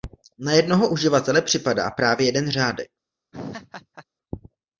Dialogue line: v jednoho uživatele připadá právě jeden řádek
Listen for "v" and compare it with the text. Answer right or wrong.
wrong